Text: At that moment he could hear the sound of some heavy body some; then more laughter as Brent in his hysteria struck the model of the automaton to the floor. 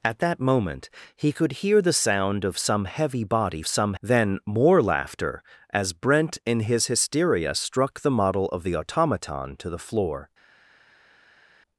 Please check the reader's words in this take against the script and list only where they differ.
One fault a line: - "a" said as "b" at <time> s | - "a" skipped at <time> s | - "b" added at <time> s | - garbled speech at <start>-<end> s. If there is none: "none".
none